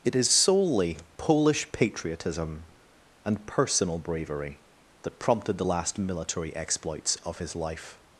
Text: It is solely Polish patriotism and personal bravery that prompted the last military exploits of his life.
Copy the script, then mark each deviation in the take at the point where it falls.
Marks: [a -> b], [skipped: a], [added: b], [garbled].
It is solely Polish patriotism and personal bravery that prompted the last military exploits of his life.